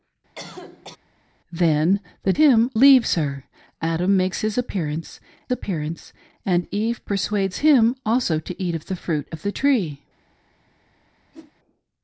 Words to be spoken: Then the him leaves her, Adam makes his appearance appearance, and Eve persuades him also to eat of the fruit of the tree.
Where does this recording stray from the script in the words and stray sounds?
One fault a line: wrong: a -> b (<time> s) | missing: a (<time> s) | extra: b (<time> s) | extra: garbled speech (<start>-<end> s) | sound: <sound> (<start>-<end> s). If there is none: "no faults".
sound: cough (0.3-1.0 s)
sound: whoosh (11.3-11.5 s)